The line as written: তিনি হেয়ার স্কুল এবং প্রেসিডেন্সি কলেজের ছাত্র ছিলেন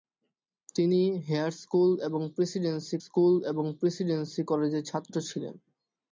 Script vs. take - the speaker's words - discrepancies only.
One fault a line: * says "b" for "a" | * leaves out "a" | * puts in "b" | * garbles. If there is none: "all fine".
* puts in "স্কুল এবং প্রেসিডেন্সি"